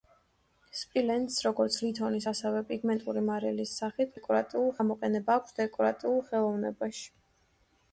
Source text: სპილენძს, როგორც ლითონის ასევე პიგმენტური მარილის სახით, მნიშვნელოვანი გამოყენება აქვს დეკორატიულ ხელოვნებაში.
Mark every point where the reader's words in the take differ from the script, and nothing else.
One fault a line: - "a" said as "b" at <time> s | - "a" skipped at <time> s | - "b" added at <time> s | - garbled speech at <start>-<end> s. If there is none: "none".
- "მნიშვნელოვანი" said as "დეკორატიულ" at 4.1 s